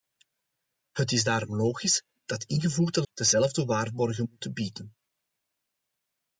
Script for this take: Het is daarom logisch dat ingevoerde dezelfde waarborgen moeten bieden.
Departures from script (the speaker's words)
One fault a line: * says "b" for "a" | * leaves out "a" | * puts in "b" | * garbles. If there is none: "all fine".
all fine